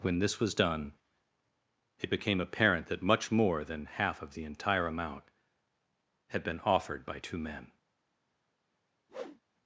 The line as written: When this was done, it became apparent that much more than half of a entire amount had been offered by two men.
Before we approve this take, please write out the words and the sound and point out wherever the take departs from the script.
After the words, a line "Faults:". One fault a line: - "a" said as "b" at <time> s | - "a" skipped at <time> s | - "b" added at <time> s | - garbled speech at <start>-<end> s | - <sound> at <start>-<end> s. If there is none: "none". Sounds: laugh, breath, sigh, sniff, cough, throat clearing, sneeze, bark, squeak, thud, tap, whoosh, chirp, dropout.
When this was done, it became apparent that much more than half of the entire amount had been offered by two men.
Faults:
- "a" said as "the" at 4.3 s
- whoosh at 9.1-9.4 s